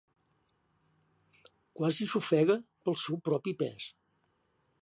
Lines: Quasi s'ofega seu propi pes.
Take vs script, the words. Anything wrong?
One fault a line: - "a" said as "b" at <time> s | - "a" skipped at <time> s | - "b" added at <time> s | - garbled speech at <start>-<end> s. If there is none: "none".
- "pel" added at 2.9 s